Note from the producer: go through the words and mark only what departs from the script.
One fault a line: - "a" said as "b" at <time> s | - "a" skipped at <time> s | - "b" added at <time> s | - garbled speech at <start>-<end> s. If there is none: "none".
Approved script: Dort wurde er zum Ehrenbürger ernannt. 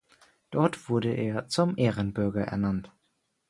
none